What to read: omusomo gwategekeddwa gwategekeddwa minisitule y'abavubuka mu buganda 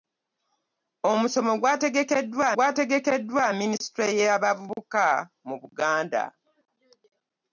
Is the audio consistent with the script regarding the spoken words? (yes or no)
yes